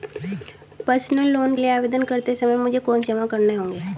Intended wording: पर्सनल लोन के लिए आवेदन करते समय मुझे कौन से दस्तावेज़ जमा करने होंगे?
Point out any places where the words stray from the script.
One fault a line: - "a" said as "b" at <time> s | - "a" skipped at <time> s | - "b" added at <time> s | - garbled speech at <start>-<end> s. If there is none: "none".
- "के" skipped at 1.6 s
- "से दस्तावेज़" skipped at 3.0 s